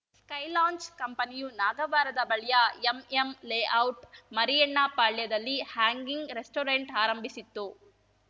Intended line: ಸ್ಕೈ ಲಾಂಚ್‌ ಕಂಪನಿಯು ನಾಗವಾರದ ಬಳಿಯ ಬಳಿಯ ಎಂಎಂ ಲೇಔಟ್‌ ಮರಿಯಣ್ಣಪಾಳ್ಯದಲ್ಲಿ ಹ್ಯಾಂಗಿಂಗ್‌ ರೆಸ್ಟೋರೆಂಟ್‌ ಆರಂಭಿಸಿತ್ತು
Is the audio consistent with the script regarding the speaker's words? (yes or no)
no